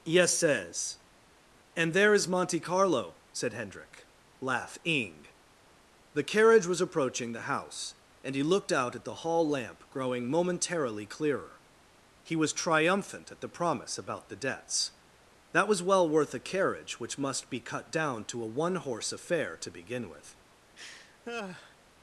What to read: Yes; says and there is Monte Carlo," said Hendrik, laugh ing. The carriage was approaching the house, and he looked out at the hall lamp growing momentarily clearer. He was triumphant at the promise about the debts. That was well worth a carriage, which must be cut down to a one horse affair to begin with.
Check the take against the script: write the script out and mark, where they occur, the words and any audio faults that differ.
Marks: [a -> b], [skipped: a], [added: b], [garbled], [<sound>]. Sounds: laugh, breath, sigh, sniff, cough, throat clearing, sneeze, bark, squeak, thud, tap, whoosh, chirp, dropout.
Yes; says and there is Monte Carlo," said Hendrik, laugh ing. The carriage was approaching the house, and he looked out at the hall lamp growing momentarily clearer. He was triumphant at the promise about the debts. That was well worth a carriage, which must be cut down to a one horse affair to begin with. [laugh]